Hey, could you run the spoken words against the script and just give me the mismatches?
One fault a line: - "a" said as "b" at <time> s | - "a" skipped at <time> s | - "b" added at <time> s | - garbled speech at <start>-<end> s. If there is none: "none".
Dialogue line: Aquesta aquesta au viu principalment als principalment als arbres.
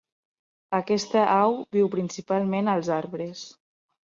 - "aquesta" skipped at 1.2 s
- "principalment als" skipped at 2.9 s